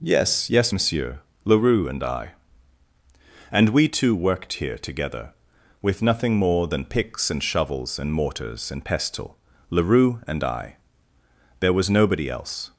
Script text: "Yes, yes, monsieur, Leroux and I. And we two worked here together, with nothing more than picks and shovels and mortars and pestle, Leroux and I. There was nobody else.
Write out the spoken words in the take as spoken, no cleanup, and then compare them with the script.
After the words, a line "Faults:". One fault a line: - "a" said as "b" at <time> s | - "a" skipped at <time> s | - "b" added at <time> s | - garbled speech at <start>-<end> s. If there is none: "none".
"Yes, yes, monsieur, Leroux and I. And we two worked here together, with nothing more than picks and shovels and mortars and pestle, Leroux and I. There was nobody else.
Faults:
none